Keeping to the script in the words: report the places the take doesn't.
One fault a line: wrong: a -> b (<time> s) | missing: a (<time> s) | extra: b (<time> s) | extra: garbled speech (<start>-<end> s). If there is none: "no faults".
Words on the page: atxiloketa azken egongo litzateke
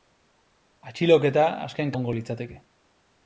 no faults